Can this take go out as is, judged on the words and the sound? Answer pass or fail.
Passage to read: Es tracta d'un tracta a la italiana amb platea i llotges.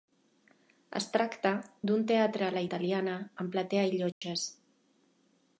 fail